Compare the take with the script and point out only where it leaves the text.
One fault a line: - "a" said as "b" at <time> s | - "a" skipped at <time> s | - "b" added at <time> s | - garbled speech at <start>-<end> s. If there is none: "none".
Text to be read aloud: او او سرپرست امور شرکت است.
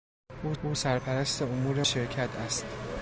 none